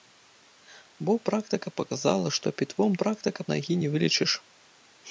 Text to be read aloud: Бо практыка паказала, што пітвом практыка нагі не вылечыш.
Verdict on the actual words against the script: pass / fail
pass